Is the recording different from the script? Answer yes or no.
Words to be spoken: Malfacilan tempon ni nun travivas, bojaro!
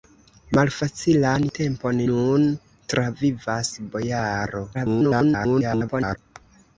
yes